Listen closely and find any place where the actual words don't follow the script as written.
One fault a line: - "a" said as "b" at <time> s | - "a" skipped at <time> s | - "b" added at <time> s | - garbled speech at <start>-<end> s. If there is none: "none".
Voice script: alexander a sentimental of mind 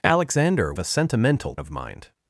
none